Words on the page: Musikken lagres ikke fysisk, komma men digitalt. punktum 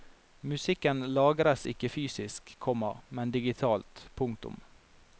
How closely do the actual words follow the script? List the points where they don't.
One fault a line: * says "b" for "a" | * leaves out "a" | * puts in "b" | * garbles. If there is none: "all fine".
all fine